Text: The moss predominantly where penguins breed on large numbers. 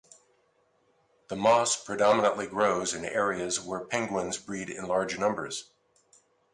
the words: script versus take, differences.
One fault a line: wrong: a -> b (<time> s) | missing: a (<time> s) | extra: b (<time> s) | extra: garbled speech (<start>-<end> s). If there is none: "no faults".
extra: grows in areas (2.5 s)
wrong: on -> in (4.7 s)